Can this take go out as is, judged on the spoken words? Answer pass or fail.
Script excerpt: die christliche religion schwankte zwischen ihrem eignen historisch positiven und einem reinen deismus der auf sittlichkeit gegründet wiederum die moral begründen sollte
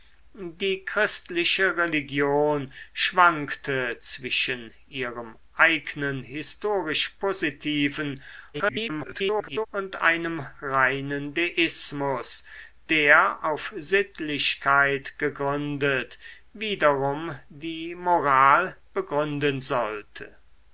fail